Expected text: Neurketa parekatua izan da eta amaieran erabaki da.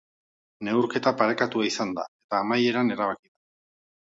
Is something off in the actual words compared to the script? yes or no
no